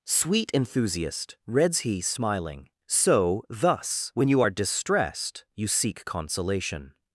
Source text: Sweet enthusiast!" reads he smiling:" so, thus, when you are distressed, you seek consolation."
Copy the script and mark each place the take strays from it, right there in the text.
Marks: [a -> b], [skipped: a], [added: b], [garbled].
Sweet enthusiast!" reads he smiling:" so, thus, when you are distressed, you seek consolation."